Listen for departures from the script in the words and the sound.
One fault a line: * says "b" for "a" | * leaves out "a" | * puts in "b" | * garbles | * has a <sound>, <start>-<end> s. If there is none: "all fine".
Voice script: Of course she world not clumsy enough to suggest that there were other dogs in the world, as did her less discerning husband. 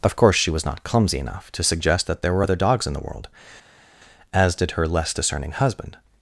* says "was" for "world"